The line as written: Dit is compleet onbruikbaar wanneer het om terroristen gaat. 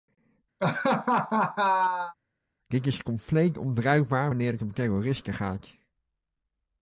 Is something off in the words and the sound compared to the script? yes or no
yes